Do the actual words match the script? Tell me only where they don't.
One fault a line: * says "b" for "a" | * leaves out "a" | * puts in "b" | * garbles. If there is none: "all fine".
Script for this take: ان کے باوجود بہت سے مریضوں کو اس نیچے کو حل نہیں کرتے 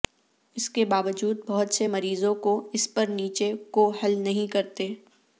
* says "اس" for "ان"
* puts in "پر"